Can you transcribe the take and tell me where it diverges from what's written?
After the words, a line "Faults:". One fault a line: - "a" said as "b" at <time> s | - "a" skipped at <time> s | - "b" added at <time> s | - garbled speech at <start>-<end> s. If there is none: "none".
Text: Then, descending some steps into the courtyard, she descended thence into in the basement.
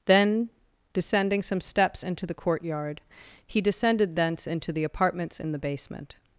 Then, descending some steps into the courtyard, he descended thence into the apartments in the basement.
Faults:
- "she" said as "he" at 3.5 s
- "the apartments" added at 4.7 s